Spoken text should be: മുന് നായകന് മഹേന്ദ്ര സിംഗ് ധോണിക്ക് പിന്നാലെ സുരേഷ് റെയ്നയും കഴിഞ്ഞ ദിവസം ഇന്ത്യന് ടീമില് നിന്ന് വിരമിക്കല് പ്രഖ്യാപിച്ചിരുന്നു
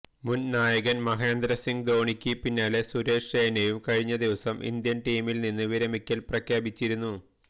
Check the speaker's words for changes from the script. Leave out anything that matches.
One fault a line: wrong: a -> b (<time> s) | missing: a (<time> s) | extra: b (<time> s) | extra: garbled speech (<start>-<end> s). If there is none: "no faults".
no faults